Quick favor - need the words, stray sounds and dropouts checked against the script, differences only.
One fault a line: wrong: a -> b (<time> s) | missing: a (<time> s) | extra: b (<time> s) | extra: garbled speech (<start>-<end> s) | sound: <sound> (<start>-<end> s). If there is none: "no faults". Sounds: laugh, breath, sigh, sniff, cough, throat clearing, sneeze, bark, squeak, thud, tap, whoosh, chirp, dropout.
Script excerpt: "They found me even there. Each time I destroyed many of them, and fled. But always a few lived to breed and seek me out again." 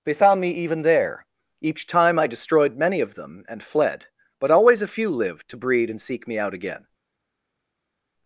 no faults